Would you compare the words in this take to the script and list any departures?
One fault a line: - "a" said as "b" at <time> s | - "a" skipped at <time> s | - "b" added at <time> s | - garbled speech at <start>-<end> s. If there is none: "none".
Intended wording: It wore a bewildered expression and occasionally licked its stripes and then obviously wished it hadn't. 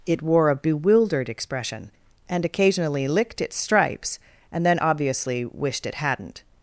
none